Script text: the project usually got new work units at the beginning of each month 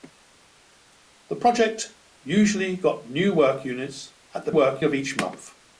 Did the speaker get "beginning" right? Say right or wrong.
wrong